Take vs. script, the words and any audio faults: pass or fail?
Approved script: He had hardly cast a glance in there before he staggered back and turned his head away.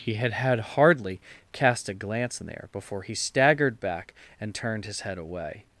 fail